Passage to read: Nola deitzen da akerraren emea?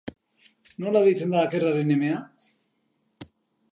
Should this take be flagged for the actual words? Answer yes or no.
no